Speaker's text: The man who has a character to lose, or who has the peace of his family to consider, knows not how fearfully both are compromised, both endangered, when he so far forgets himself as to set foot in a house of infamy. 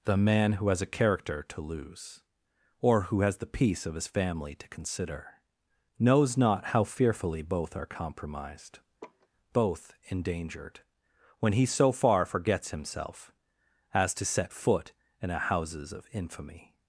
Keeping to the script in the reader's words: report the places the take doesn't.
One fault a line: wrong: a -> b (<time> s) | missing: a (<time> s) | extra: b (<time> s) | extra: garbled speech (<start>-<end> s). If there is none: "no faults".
wrong: house -> houses (15.4 s)